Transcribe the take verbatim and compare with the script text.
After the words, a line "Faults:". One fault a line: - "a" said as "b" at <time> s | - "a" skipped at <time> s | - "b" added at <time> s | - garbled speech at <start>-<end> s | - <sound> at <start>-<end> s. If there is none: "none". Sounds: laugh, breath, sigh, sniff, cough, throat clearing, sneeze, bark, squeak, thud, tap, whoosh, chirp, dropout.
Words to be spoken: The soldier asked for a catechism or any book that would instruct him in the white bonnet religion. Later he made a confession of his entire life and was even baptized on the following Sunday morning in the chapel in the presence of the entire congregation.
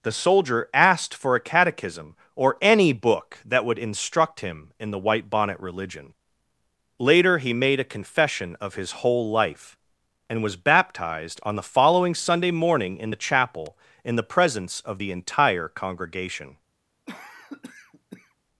The soldier asked for a catechism or any book that would instruct him in the white bonnet religion. Later he made a confession of his whole life and was baptized on the following Sunday morning in the chapel in the presence of the entire congregation.
Faults:
- "entire" said as "whole" at 9.1 s
- "even" skipped at 10.6 s
- cough at 17.1-18.3 s